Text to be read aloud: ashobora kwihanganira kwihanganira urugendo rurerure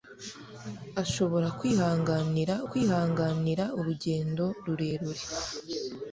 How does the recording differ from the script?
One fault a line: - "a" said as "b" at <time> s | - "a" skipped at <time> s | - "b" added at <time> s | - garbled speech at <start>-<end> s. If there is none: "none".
none